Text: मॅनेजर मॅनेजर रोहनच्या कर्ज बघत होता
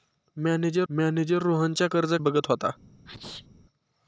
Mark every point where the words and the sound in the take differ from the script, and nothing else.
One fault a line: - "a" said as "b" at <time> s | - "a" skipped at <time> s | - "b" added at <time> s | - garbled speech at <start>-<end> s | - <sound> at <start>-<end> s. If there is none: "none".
- sneeze at 3.1-3.5 s